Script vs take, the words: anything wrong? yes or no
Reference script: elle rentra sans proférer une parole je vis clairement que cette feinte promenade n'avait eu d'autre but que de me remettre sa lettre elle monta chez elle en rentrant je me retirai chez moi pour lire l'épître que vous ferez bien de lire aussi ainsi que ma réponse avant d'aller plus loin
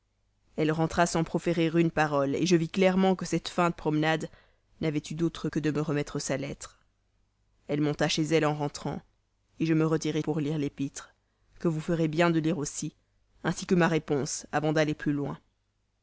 yes